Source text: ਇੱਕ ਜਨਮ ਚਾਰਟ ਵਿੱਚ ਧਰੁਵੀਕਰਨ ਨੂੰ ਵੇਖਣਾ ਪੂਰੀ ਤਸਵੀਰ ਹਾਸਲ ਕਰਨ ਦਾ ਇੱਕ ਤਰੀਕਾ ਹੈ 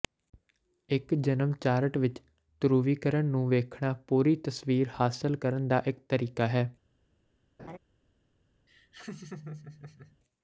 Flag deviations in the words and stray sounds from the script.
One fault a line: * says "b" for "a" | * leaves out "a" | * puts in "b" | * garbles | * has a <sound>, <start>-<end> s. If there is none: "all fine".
* has a laugh, 7.6-7.8 s
* has a laugh, 8.7-10.2 s